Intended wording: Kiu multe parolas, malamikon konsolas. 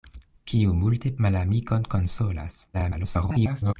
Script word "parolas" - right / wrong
wrong